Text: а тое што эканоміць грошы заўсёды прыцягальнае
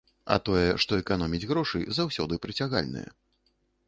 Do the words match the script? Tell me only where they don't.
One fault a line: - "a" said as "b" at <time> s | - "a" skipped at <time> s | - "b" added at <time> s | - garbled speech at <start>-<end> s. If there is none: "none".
none